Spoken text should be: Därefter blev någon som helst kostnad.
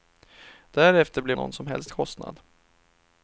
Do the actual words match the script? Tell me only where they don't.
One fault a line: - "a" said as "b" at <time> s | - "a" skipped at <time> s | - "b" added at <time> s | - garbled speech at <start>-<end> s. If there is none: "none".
none